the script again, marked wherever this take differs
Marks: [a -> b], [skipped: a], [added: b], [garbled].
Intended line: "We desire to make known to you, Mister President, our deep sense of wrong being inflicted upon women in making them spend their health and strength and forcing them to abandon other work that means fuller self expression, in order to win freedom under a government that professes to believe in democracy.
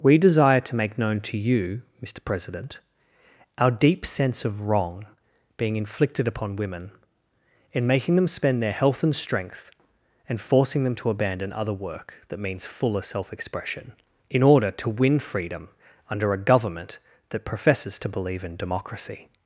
"We desire to make known to you, Mister President, our deep sense of wrong being inflicted upon women in making them spend their health and strength and forcing them to abandon other work that means fuller self expression, in order to win freedom under a government that professes to believe in democracy.